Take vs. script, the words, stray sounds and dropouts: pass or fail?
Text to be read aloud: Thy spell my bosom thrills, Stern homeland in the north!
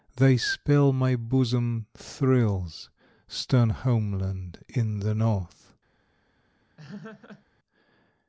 fail